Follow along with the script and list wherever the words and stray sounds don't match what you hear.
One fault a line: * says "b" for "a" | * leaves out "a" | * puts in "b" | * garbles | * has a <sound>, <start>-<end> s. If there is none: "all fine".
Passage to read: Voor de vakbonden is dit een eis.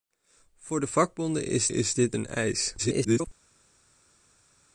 * puts in "is"
* garbles